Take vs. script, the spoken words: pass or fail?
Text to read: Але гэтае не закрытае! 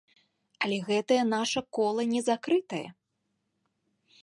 fail